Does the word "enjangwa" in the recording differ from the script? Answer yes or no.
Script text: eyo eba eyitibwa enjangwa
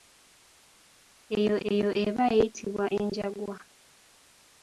no